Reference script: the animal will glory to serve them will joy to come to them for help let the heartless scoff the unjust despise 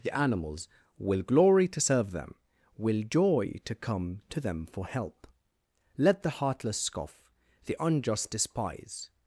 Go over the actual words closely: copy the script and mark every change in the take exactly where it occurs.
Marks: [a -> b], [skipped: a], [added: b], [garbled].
the [animal -> animals] will glory to serve them will joy to come to them for help let the heartless scoff the unjust despise